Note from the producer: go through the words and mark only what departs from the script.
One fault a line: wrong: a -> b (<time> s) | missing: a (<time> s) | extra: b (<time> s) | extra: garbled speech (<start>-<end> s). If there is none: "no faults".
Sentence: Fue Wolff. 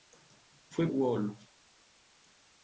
no faults